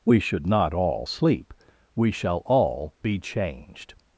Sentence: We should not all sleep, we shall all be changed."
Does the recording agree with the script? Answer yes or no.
yes